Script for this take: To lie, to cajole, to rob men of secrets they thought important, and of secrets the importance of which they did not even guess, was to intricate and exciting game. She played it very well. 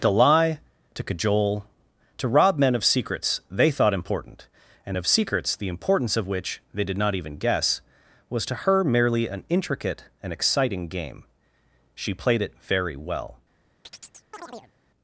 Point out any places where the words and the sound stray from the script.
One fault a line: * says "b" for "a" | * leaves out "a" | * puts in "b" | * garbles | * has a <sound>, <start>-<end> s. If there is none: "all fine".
* puts in "her merely an"
* has a chirp, 13.8-14.7 s